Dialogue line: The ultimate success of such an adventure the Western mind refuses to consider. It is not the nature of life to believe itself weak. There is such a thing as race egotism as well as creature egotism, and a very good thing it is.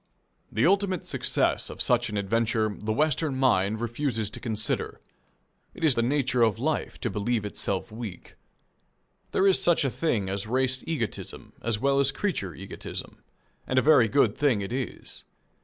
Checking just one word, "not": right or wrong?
wrong